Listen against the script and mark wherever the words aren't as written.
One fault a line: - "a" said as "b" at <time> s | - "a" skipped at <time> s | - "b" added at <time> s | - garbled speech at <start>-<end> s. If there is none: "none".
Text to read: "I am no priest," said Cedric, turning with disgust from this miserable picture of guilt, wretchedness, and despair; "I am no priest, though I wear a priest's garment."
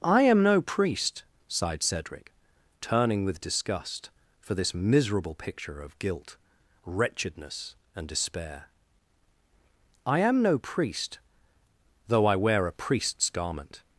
- "said" said as "sighed" at 1.5 s
- "from" said as "for" at 4.4 s